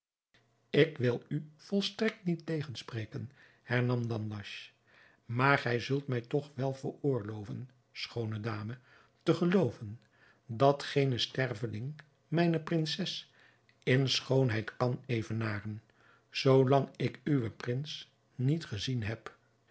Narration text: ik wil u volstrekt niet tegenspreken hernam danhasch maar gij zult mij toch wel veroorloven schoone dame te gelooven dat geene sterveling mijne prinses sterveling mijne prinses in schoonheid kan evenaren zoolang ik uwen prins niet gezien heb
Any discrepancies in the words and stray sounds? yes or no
yes